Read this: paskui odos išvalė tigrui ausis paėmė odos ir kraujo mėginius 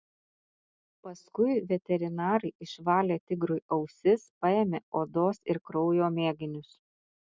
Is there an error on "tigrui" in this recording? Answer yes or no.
no